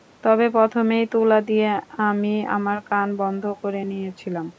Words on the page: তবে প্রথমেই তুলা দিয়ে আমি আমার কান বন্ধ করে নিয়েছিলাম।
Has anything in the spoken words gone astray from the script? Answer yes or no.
no